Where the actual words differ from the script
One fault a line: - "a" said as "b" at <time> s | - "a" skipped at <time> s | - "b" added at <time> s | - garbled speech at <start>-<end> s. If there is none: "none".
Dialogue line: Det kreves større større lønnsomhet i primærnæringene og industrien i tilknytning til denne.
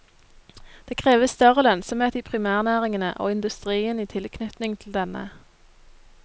- "større" skipped at 1.6 s